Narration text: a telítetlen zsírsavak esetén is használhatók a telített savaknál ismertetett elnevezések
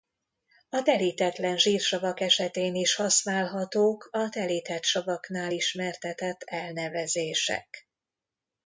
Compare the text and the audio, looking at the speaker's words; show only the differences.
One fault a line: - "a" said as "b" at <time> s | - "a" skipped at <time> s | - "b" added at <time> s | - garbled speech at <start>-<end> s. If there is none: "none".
none